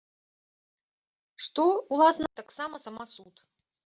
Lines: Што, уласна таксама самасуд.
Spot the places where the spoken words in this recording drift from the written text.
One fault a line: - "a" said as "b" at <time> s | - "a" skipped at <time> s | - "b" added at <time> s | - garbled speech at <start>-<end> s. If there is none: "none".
none